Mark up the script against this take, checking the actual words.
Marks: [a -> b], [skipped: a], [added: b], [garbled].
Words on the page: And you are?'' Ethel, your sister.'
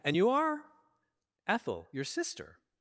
And you are?'' Ethel, your sister.'